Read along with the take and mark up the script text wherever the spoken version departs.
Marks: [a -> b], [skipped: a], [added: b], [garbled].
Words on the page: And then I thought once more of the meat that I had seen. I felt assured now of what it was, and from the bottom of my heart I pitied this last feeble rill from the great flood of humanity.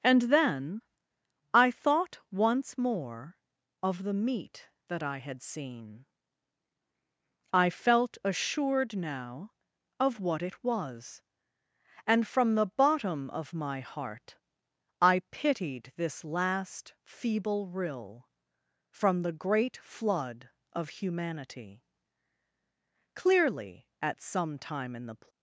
And then I thought once more of the meat that I had seen. I felt assured now of what it was, and from the bottom of my heart I pitied this last feeble rill from the great flood of humanity. [added: Clearly at some time in the]